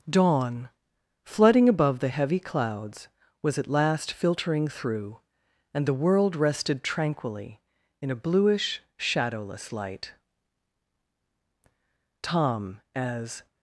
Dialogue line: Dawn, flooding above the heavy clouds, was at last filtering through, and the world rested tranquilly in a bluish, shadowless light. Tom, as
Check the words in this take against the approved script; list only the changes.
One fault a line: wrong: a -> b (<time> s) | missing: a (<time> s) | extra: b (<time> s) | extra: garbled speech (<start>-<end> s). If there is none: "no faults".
no faults